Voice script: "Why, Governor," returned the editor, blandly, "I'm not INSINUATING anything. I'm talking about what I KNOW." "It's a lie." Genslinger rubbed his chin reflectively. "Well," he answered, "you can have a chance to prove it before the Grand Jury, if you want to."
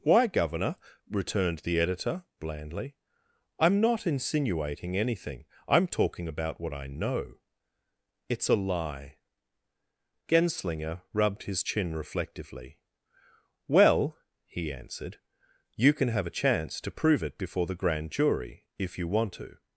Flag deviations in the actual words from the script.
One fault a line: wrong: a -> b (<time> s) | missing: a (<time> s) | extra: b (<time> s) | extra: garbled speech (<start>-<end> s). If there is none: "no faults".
no faults